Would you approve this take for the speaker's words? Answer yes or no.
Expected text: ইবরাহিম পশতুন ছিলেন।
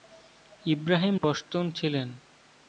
yes